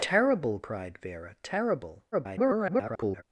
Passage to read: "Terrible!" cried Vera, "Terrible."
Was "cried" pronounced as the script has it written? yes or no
yes